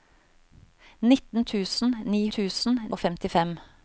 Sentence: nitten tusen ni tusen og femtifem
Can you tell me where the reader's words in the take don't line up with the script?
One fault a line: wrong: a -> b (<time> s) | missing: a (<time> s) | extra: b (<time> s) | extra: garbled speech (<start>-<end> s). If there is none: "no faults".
no faults